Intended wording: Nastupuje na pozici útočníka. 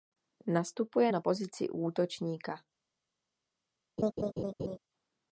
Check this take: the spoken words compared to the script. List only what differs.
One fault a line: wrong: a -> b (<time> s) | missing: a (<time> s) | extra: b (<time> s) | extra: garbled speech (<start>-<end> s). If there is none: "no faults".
no faults